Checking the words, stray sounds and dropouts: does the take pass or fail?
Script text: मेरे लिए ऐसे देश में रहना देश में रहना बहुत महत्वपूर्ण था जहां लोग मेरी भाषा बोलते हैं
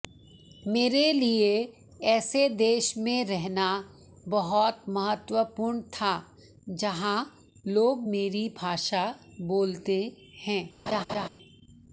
fail